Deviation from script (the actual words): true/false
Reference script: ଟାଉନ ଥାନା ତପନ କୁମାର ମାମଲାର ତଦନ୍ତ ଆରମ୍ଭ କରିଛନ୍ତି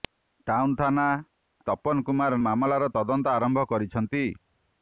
false